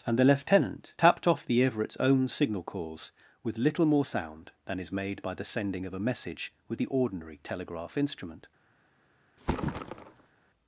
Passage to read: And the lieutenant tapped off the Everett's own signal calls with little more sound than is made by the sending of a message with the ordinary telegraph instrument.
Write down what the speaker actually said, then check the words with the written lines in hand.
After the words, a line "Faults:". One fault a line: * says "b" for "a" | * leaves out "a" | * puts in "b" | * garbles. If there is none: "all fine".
And the lieutenant tapped off the Everett's own signal calls with little more sound than is made by the sending of a message with the ordinary telegraph instrument.
Faults:
all fine